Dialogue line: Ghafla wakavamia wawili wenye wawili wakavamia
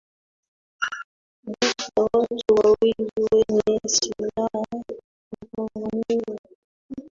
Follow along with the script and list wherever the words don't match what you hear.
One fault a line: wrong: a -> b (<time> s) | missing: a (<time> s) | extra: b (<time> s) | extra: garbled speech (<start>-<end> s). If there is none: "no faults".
wrong: wakavamia -> watu (2.1 s)
wrong: wawili -> silaha (3.9 s)